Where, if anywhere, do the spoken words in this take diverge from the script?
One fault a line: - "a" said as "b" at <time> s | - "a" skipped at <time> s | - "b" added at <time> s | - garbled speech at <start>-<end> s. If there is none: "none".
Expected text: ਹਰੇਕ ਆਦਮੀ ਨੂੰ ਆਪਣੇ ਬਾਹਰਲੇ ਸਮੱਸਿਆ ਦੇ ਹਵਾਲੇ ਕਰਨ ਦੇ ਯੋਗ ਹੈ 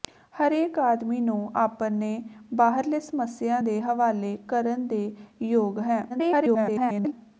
- garbled speech at 6.1-7.1 s